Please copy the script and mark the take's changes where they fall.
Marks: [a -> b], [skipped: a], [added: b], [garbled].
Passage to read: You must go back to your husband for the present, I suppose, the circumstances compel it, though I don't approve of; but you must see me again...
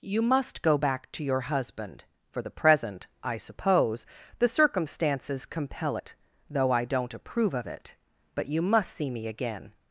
You must go back to your husband for the present, I suppose, the circumstances compel it, though I don't approve of; [added: it] but you must see me again...